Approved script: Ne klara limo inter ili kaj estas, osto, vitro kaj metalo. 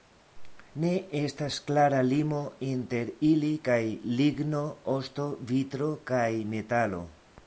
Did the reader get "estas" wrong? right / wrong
wrong